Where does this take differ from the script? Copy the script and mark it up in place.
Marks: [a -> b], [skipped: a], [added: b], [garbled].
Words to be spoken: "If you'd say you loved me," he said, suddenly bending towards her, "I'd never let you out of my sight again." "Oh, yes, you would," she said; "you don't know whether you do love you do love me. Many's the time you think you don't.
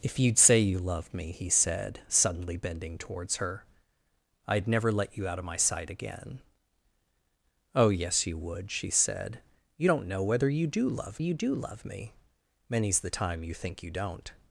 "If you'd say you loved me," he said, suddenly bending towards her, "I'd never let you out of my sight again." "Oh, yes, you would," she said; "you don't know whether you do love you do love me. Many's the time you think you don't.